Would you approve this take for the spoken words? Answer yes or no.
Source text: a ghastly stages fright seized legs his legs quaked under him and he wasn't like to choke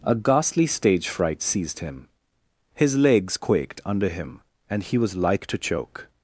no